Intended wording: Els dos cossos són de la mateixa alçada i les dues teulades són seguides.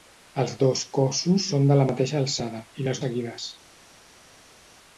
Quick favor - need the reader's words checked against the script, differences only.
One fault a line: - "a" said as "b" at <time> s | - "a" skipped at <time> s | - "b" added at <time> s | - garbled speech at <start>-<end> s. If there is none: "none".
- "dues teulades són" skipped at 3.0 s